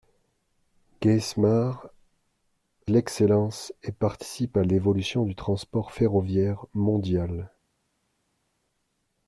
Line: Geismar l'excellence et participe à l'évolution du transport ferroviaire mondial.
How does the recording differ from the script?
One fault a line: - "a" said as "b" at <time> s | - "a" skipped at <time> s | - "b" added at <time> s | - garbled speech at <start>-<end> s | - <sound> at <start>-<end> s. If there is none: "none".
none